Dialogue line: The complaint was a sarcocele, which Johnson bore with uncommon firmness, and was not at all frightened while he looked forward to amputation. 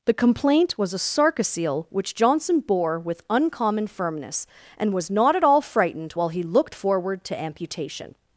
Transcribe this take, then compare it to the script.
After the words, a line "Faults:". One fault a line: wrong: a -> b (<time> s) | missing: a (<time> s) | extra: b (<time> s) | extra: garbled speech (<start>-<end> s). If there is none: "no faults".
The complaint was a sarcocele, which Johnson bore with uncommon firmness, and was not at all frightened while he looked forward to amputation.
Faults:
no faults